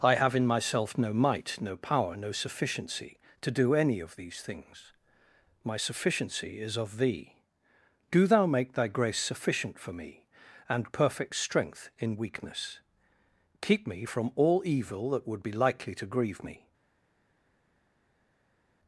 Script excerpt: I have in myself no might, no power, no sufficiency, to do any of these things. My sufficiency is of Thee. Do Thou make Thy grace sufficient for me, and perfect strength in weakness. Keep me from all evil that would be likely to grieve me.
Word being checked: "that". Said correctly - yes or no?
yes